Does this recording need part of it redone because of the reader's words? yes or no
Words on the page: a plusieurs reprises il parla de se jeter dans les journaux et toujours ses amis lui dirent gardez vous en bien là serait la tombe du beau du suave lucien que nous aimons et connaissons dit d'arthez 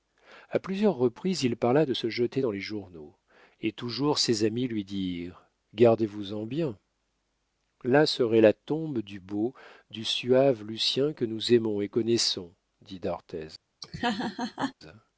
no